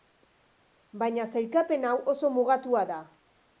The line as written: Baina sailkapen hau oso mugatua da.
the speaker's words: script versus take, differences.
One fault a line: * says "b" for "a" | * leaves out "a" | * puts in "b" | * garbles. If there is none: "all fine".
all fine